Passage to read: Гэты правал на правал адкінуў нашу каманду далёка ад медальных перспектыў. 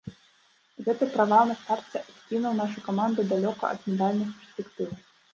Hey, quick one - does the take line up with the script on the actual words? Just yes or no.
no